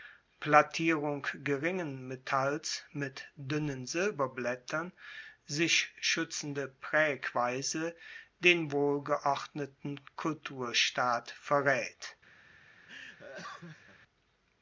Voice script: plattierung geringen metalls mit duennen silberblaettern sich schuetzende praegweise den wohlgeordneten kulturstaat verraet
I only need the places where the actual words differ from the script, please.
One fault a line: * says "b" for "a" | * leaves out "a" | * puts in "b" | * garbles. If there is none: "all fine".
all fine